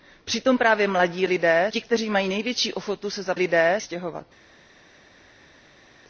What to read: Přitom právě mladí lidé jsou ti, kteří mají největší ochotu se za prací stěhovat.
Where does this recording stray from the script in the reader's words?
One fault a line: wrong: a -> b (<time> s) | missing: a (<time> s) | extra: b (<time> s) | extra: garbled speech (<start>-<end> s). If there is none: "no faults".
missing: jsou (1.7 s)
wrong: prací -> lidé (3.4 s)